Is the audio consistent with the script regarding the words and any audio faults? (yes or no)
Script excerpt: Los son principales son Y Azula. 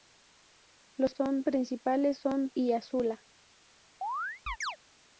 no